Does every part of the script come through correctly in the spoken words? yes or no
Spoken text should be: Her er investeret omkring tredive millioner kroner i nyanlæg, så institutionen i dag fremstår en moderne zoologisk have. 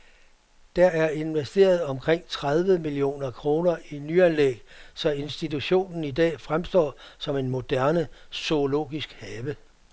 no